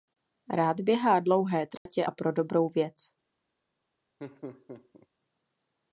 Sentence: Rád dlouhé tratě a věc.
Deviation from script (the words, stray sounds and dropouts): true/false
true